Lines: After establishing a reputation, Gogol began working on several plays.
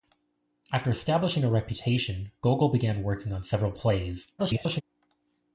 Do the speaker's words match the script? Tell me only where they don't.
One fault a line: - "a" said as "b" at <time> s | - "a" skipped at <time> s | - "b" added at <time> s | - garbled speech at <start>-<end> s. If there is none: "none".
- garbled speech at 4.4-4.8 s